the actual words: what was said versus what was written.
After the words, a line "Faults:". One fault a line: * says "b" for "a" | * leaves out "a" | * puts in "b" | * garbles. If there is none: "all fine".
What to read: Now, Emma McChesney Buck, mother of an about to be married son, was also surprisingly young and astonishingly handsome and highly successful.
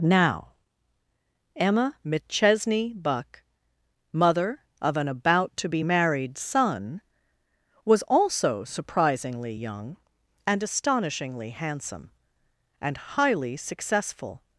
Now, Emma McChesney Buck, mother of an about to be married son, was also surprisingly young and astonishingly handsome and highly successful.
Faults:
all fine